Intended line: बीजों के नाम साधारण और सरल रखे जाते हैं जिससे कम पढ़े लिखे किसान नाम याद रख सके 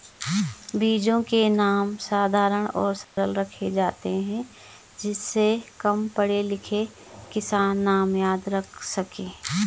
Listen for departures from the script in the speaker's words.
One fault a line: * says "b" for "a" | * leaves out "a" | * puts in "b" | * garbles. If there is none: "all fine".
all fine